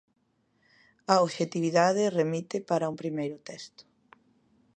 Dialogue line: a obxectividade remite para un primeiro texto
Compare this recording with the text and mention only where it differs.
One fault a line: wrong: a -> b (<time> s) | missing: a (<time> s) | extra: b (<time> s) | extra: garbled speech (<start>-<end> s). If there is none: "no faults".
no faults